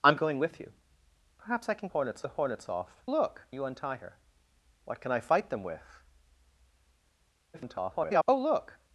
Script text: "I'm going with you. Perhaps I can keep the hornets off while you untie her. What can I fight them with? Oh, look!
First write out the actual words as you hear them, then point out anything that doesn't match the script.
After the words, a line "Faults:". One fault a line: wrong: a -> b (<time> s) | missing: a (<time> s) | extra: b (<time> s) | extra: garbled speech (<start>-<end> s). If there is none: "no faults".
"I'm going with you. Perhaps I can hornets the hornets off look you untie her. What can I fight them with? [garbled] Oh, look!
Faults:
wrong: keep -> hornets (1.9 s)
wrong: while -> look (3.1 s)
extra: garbled speech (7.5-8.2 s)